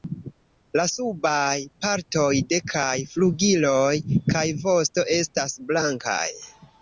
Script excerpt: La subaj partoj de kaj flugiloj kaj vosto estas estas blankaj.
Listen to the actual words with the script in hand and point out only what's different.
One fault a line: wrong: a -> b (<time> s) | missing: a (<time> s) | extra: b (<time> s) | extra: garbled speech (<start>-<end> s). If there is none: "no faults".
missing: estas (5.6 s)